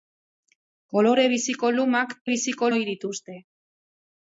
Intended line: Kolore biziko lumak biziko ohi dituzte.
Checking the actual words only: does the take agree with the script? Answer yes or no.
yes